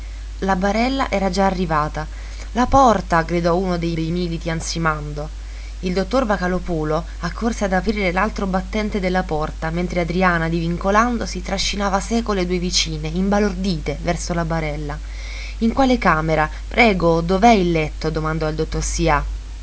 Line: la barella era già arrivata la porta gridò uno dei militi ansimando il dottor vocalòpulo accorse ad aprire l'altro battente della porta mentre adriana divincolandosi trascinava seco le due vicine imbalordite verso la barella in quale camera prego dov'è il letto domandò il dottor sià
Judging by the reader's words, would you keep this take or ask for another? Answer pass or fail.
fail